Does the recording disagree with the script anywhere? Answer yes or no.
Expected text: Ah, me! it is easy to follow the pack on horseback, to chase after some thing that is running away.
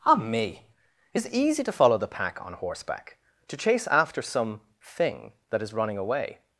no